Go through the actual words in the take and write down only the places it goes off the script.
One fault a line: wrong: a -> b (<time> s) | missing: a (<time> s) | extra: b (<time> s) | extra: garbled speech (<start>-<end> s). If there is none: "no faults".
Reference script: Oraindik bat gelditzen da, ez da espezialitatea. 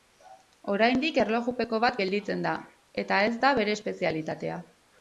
extra: erlojupeko (1.2 s)
extra: eta (3.0 s)
extra: bere (3.6 s)